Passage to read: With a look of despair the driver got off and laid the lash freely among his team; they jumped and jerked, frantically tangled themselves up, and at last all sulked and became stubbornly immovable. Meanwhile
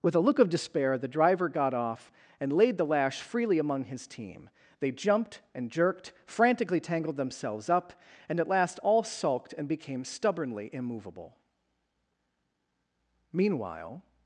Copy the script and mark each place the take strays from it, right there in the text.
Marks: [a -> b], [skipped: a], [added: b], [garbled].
With a look of despair the driver got off and laid the lash freely among his team; they jumped and jerked, frantically tangled themselves up, and at last all sulked and became stubbornly immovable. Meanwhile